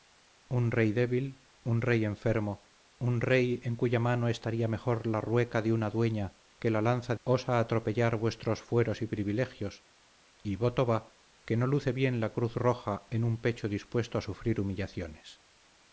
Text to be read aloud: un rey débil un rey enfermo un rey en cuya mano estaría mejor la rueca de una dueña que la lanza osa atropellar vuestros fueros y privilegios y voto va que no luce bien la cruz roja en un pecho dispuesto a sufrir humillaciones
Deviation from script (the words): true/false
false